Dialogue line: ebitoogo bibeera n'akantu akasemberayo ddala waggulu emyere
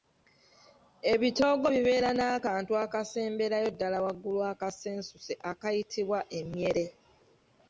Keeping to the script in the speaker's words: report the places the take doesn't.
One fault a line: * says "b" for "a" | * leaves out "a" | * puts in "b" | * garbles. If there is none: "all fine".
* puts in "akasensuse akayitibwa"